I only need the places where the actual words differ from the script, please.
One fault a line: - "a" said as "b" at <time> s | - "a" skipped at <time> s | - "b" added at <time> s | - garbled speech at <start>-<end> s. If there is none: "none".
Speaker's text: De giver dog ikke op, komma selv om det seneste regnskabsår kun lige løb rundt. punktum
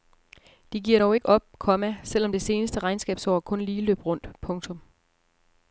none